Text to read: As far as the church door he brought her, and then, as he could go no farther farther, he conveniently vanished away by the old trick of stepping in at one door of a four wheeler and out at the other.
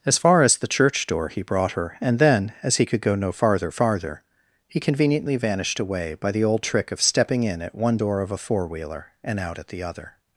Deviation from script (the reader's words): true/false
false